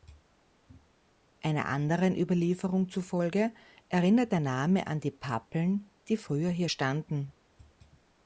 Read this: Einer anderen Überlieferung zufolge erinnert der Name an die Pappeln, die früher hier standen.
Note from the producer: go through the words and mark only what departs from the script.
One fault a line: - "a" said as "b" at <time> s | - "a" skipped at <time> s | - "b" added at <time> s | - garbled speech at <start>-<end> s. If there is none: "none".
none